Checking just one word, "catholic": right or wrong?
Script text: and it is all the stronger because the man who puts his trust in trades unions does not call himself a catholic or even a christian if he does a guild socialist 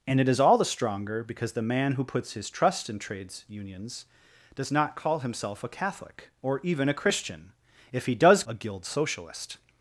right